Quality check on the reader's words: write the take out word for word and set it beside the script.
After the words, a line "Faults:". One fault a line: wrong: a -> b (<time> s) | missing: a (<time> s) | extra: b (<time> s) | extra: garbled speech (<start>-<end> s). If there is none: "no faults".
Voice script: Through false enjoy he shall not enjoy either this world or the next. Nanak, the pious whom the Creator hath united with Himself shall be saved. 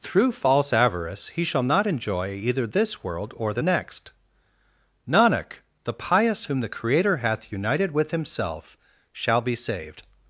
Through false avarice he shall not enjoy either this world or the next. Nanak, the pious whom the Creator hath united with Himself shall be saved.
Faults:
wrong: enjoy -> avarice (0.7 s)